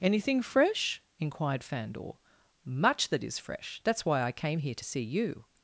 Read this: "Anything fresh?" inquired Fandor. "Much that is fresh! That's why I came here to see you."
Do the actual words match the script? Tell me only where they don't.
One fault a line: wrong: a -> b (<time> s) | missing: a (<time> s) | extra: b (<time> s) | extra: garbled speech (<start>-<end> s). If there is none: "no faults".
no faults